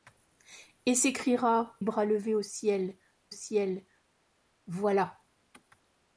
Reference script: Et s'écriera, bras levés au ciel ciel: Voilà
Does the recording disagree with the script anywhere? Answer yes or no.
no